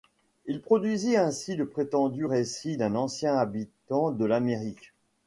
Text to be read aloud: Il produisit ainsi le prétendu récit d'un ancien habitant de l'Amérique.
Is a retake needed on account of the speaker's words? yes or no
no